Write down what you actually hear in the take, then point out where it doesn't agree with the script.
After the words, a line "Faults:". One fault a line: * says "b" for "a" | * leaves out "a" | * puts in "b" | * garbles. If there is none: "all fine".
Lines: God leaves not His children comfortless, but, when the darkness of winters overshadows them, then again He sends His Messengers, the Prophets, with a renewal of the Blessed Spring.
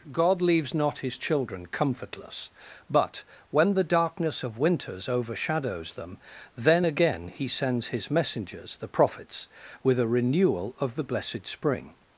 God leaves not His children comfortless, but, when the darkness of winters overshadows them, then again He sends His Messengers, the Prophets, with a renewal of the Blessed Spring.
Faults:
all fine